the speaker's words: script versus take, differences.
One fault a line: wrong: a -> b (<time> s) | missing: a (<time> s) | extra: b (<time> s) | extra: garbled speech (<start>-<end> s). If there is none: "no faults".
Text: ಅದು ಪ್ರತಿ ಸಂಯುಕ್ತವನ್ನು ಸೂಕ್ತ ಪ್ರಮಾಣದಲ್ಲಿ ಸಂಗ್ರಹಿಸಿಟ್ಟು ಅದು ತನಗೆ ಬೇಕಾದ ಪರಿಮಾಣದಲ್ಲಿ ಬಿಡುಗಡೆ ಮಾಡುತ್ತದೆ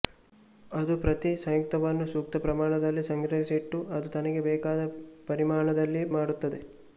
missing: ಬಿಡುಗಡೆ (6.0 s)